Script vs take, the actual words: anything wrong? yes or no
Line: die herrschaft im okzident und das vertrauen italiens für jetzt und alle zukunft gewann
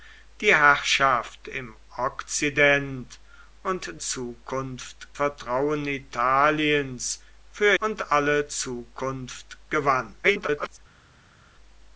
yes